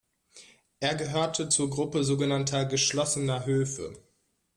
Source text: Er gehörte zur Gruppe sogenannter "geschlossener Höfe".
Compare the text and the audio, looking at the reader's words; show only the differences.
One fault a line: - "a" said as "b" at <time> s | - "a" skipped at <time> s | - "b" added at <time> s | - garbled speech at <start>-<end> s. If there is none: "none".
none